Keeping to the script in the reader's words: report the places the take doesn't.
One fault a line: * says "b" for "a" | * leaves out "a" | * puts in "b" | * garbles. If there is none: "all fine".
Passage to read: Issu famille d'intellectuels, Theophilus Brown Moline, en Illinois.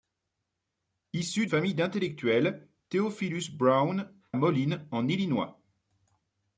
all fine